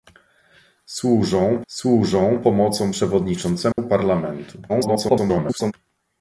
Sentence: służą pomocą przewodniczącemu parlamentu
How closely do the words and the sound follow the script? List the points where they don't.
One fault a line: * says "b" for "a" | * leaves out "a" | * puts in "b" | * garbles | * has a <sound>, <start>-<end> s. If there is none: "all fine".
* puts in "służą"
* has a dropout, 3.7-3.8 s
* garbles